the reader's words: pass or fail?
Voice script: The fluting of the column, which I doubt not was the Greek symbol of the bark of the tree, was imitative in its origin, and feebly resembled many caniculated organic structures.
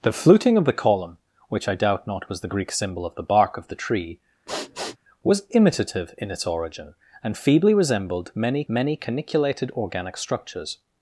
fail